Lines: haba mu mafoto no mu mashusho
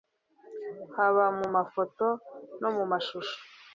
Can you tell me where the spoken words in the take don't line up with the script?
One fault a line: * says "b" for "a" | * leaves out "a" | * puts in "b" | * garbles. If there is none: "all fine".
all fine